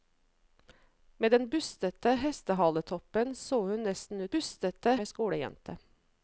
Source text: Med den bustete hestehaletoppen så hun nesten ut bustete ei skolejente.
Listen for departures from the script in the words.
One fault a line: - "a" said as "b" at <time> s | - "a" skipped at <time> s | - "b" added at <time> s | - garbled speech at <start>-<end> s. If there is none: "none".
none